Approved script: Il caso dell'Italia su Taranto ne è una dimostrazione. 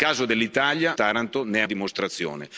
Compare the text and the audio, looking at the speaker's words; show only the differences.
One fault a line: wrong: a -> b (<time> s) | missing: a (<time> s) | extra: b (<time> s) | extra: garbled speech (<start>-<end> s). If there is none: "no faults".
missing: su (1.0 s)
missing: una (1.6 s)